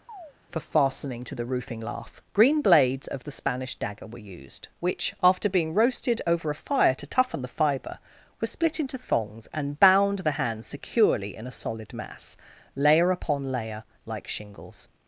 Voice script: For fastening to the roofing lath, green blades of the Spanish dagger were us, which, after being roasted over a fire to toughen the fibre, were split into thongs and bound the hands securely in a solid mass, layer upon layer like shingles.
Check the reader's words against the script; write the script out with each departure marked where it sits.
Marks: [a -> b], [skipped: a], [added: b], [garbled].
For fastening to the roofing lath, green blades of the Spanish dagger were [us, -> used] which, after being roasted over a fire to toughen the fibre, were split into thongs and bound the hands securely in a solid mass, layer upon layer like shingles.